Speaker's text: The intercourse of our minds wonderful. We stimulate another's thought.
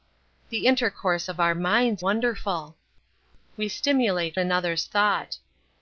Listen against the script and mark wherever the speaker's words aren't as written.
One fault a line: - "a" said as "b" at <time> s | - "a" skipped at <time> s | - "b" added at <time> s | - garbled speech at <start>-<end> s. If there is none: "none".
none